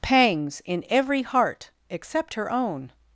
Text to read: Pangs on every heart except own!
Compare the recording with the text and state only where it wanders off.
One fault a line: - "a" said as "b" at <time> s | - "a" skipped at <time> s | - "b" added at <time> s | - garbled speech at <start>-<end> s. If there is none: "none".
- "on" said as "in" at 0.7 s
- "her" added at 2.3 s